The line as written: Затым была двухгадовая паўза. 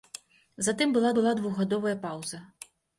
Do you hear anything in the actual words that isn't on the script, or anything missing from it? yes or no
yes